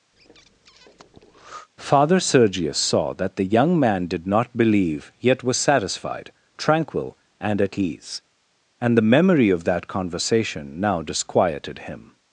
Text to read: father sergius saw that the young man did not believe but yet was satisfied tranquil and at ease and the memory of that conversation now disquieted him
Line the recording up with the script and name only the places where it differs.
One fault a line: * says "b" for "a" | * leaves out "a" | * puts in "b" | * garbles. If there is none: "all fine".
* leaves out "but"